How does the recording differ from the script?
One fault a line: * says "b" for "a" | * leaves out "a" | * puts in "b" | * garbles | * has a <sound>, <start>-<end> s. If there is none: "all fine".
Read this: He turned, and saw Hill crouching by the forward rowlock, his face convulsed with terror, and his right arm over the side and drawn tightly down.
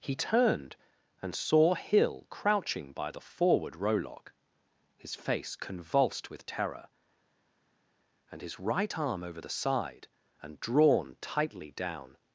all fine